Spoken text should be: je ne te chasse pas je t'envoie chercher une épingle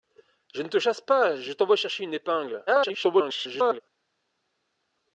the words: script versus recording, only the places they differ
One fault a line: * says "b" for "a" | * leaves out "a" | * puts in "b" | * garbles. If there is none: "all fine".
* garbles